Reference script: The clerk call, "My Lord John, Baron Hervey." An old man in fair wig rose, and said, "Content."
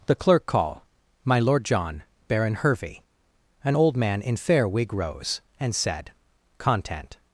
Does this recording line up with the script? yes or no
yes